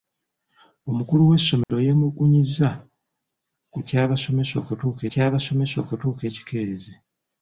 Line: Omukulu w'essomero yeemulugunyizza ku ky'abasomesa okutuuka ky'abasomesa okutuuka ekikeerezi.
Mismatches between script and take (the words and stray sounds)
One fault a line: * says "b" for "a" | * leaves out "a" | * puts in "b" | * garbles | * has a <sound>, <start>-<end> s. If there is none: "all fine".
* has a dropout, 1.6-1.7 s